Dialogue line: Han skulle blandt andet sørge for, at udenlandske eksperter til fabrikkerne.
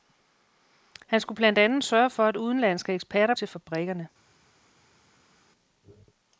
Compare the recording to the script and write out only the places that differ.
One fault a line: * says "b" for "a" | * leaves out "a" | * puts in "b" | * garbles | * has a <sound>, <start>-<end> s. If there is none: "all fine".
all fine